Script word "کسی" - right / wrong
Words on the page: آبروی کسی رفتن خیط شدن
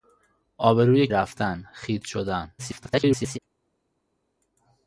wrong